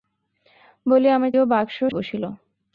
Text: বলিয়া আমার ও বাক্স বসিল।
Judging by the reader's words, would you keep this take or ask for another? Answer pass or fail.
pass